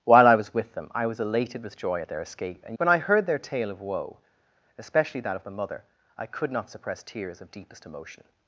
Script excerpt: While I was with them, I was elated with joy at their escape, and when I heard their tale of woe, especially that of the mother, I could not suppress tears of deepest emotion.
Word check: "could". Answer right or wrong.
right